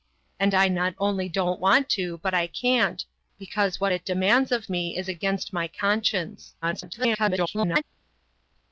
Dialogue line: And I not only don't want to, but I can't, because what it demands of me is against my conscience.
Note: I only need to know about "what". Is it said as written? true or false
true